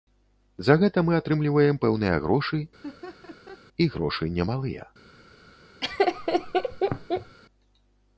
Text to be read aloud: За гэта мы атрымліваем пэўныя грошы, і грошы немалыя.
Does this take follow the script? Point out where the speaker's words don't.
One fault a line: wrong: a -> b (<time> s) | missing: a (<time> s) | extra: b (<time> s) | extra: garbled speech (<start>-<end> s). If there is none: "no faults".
no faults